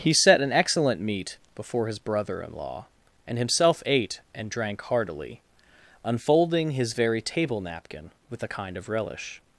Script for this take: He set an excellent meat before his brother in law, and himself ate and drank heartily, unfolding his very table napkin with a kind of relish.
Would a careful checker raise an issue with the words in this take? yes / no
no